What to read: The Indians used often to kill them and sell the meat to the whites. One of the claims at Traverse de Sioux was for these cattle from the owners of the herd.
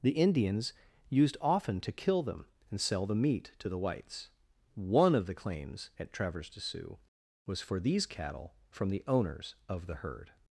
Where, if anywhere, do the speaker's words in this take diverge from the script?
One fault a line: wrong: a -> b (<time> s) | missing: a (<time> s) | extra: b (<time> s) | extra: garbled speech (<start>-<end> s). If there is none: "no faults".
no faults